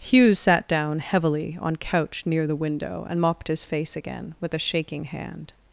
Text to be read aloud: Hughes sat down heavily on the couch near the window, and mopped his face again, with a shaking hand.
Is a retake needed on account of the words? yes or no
yes